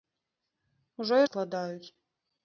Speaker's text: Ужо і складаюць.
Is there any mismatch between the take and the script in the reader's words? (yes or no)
no